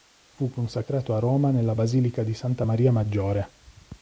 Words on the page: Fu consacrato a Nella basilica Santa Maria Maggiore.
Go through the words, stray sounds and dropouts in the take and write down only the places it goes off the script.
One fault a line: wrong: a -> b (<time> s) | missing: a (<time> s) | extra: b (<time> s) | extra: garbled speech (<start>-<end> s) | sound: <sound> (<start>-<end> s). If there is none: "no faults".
extra: Roma (1.2 s)
extra: di (2.2 s)